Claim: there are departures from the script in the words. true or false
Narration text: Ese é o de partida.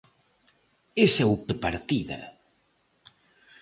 false